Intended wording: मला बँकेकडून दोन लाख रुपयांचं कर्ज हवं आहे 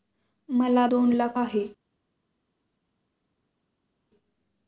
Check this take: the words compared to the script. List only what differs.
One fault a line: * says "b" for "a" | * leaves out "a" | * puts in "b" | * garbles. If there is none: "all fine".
* leaves out "बँकेकडून"
* leaves out "रुपयांचं कर्ज हवं"